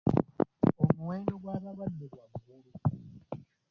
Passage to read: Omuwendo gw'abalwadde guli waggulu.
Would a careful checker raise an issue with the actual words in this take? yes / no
yes